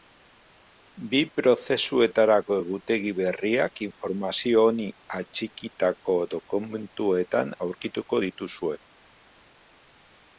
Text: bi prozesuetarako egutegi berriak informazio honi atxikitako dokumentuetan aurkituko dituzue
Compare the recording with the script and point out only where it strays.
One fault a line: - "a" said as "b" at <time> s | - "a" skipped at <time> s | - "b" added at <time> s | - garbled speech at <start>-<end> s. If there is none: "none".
none